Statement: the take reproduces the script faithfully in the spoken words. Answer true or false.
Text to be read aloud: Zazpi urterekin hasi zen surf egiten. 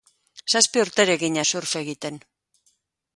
false